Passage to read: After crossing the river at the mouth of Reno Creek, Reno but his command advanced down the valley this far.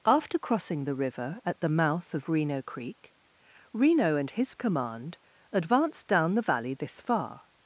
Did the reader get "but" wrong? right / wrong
wrong